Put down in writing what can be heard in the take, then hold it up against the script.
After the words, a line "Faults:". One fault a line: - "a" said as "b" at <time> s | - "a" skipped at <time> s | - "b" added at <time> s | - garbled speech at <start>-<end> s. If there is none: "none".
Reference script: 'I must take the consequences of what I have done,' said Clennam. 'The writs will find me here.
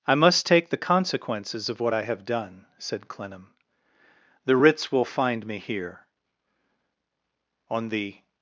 'I must take the consequences of what I have done,' said Clennam. 'The writs will find me here. On the
Faults:
- "On the" added at 7.7 s